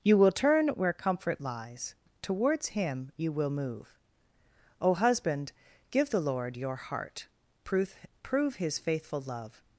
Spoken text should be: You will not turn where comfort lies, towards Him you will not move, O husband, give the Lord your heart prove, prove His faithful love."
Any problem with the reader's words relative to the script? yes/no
yes